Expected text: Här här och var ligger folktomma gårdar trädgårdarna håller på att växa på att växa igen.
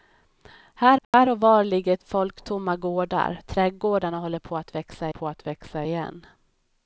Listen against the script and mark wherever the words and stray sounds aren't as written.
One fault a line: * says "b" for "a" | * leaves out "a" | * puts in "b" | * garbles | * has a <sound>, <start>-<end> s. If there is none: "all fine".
* has a dropout, 1.0-1.1 s